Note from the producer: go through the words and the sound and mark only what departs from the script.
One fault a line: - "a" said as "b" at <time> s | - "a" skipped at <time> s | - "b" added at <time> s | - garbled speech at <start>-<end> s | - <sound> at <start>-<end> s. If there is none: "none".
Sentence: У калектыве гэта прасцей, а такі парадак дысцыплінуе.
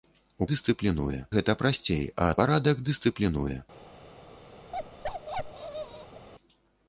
- "калектыве" said as "дысцыплінуе" at 0.5 s
- "такі" skipped at 2.3 s
- bark at 4.7-6.3 s